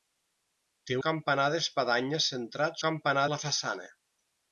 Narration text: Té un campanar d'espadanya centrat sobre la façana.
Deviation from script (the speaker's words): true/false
true